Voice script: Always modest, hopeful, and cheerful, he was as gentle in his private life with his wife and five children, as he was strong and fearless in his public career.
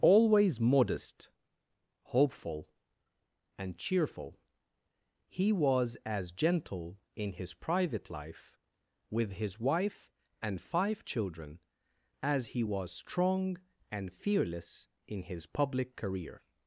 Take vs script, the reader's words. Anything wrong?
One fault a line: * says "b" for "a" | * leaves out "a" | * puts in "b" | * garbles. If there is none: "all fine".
all fine